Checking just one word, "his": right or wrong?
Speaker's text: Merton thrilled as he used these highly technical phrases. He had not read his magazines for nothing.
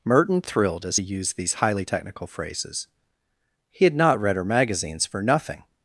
wrong